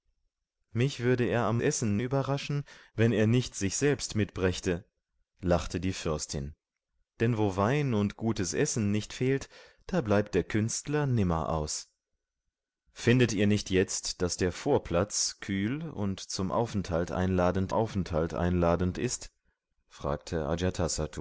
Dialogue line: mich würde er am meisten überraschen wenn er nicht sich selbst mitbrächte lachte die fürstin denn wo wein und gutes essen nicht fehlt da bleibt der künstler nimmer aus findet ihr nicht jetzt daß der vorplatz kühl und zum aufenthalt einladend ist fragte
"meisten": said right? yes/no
no